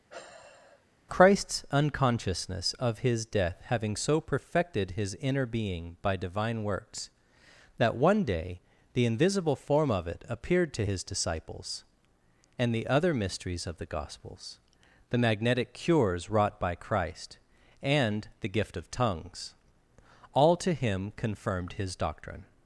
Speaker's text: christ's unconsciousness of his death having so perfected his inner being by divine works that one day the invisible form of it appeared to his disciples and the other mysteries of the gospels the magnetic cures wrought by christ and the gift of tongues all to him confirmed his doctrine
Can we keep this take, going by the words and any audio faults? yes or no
no